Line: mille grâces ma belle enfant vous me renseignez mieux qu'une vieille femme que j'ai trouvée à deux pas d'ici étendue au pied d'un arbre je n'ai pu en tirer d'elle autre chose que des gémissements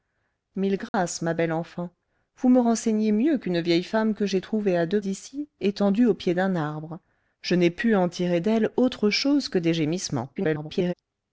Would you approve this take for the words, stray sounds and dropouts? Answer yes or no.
no